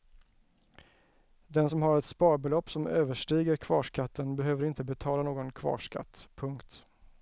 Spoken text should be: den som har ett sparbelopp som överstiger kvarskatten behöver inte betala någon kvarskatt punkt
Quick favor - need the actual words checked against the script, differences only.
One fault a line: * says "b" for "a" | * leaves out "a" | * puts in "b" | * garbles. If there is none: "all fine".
all fine